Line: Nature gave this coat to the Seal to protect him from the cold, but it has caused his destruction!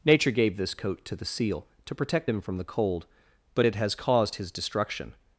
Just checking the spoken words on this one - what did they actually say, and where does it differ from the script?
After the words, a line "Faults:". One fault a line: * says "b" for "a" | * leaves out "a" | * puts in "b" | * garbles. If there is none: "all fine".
Nature gave this coat to the Seal to protect him from the cold, but it has caused his destruction!
Faults:
all fine